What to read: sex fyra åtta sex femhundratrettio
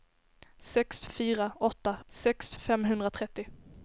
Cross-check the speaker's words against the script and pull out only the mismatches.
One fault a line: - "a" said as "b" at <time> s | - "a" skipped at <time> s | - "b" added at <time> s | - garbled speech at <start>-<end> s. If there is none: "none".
none